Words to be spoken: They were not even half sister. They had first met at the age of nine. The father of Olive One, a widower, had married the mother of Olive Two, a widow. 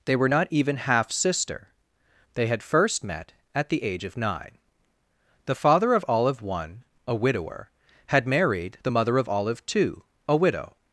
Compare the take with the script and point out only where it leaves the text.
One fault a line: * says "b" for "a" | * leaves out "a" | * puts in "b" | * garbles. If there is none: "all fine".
all fine